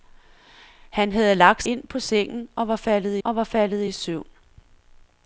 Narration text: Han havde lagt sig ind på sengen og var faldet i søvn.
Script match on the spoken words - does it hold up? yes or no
no